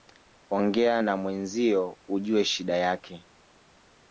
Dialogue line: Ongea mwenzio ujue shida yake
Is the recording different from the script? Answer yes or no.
yes